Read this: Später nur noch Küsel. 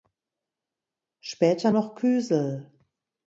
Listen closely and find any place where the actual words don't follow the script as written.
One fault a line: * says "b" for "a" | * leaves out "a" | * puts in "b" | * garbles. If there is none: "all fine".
* leaves out "nur"